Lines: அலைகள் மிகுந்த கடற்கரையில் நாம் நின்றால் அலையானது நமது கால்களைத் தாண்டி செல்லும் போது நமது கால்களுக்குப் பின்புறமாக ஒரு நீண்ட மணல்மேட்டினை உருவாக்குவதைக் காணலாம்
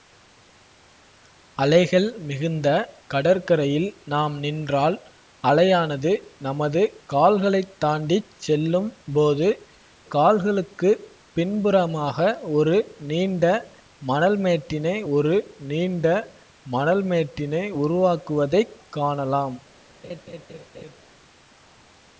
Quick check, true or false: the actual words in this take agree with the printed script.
false